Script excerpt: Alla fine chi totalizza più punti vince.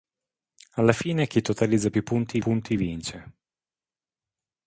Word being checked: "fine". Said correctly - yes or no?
yes